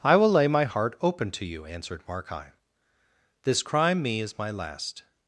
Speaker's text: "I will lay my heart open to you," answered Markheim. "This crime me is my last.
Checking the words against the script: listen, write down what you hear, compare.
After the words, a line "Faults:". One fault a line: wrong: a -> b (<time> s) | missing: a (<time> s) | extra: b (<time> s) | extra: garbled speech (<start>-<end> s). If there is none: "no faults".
"I will lay my heart open to you," answered Markheim. "This crime me is my last.
Faults:
no faults